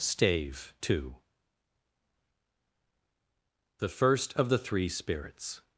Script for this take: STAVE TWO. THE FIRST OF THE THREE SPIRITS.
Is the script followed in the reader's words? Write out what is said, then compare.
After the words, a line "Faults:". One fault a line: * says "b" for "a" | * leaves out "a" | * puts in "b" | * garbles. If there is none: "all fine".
STAVE TWO. THE FIRST OF THE THREE SPIRITS.
Faults:
all fine